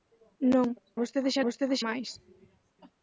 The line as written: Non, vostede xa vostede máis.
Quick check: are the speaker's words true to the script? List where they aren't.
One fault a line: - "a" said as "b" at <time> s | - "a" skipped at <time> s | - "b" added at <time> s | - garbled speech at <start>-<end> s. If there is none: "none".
none